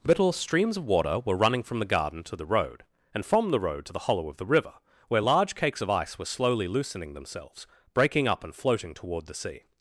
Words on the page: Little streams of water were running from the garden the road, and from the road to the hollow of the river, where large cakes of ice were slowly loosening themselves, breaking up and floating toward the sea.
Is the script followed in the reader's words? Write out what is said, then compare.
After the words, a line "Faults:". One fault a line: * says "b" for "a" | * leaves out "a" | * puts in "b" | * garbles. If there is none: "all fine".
Little streams of water were running from the garden to the road, and from the road to the hollow of the river, where large cakes of ice were slowly loosening themselves, breaking up and floating toward the sea.
Faults:
* puts in "to"